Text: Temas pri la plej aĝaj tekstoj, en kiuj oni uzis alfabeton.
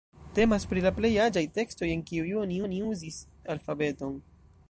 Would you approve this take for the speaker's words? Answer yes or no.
no